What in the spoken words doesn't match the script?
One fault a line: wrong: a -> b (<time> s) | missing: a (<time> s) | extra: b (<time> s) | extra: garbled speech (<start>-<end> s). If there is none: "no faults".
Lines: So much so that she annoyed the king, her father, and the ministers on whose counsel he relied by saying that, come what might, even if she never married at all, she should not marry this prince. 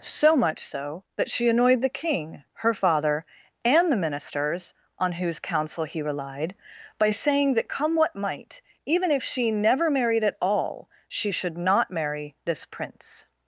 no faults